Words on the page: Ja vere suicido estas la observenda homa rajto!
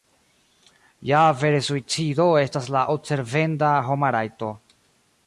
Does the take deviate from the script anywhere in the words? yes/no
no